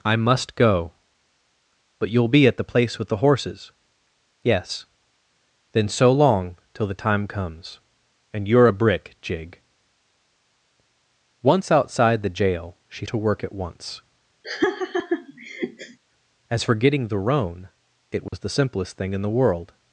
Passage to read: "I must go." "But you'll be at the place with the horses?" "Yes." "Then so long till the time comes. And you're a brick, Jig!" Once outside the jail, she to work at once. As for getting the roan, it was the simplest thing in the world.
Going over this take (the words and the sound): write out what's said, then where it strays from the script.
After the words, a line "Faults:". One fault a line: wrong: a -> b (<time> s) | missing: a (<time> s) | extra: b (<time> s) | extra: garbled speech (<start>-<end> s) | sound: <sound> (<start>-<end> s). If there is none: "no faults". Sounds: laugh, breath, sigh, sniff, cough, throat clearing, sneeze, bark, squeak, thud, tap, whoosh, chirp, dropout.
"I must go." "But you'll be at the place with the horses?" "Yes." "Then so long till the time comes. And you're a brick, Jig!" Once outside the jail, she to work at once. As for getting the roan, it was the simplest thing in the world.
Faults:
sound: laugh (14.4-16.0 s)
sound: dropout (18.3-18.3 s)